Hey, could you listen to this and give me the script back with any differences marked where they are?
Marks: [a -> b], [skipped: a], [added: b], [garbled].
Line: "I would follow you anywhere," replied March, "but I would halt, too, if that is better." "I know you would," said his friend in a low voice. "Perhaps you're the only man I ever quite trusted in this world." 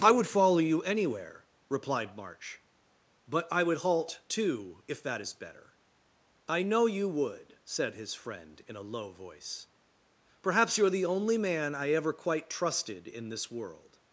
"I would follow you anywhere," replied March, "but I would halt, too, if that is better." "I know you would," said his friend in a low voice. "Perhaps you're the only man I ever quite trusted in this world."